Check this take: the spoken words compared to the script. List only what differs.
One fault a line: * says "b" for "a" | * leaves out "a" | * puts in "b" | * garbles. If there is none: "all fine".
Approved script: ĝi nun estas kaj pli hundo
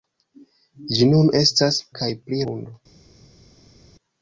all fine